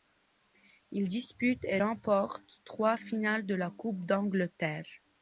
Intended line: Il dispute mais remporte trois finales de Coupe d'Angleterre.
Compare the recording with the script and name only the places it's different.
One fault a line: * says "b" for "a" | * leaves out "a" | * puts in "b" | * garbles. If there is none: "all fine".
* says "et" for "mais"
* puts in "la"